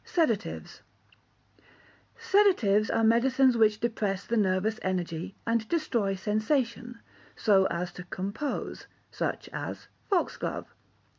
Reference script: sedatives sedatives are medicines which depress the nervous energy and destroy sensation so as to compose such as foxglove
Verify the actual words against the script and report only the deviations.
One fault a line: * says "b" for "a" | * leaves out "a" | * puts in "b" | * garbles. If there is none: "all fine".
all fine